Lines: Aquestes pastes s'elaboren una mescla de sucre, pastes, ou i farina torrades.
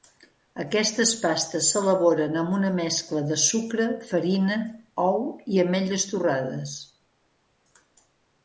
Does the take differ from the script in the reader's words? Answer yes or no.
yes